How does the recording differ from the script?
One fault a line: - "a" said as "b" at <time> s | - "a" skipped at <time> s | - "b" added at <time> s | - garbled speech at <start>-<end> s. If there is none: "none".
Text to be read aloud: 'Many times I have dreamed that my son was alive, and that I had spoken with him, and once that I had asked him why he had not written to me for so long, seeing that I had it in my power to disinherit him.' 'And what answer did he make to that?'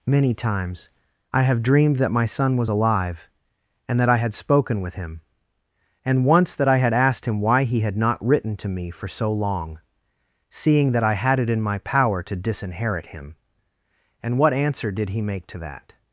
none